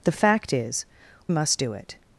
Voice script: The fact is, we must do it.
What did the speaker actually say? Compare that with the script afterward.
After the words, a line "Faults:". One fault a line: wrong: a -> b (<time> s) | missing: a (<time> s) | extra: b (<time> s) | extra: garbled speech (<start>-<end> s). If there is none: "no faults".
The fact is, must do it.
Faults:
missing: we (0.9 s)